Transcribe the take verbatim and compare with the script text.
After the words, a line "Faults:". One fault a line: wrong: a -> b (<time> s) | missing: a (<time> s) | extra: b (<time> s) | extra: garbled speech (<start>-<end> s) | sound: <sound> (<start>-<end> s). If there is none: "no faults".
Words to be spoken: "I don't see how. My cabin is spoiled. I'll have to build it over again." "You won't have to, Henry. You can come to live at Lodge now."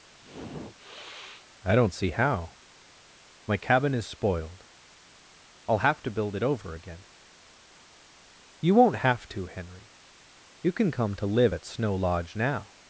"I don't see how. My cabin is spoiled. I'll have to build it over again." "You won't have to, Henry. You can come to live at Snow Lodge now."
Faults:
sound: sniff (0.1-1.5 s)
extra: Snow (11.6 s)